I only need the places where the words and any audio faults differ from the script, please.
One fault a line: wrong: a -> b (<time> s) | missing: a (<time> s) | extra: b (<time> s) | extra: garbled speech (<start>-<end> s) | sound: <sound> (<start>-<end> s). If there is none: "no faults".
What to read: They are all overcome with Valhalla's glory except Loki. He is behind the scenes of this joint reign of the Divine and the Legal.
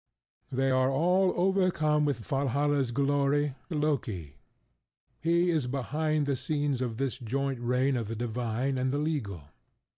missing: except (3.6 s)